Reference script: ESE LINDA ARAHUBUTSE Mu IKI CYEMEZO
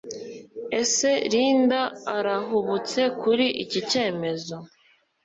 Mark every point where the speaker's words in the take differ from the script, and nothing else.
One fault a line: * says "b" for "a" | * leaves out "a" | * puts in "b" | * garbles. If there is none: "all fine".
* says "KURI" for "Mu"